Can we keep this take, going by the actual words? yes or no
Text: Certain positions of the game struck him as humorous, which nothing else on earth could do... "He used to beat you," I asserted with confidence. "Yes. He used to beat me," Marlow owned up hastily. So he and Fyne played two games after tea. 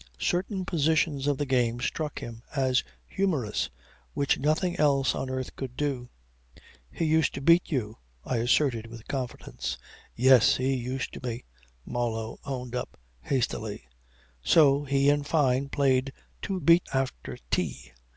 no